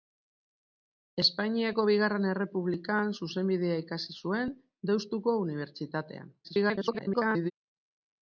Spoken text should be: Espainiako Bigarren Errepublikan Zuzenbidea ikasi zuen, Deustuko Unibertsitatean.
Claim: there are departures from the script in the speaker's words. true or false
true